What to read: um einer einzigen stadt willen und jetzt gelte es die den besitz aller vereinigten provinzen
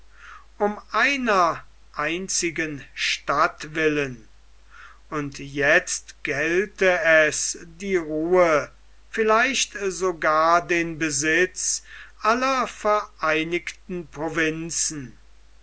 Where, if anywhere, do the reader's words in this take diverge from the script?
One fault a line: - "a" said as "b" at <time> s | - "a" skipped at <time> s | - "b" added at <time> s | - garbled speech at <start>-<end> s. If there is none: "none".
- "ruhe vielleicht sogar" added at 8.0 s